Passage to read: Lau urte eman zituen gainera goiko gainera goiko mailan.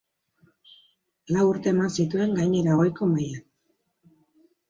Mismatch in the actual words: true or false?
true